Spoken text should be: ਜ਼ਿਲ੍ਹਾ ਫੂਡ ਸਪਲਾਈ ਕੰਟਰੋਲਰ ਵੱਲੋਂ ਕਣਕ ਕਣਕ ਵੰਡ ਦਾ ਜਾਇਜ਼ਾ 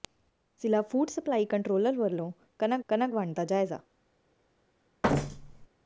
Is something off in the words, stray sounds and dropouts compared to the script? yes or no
yes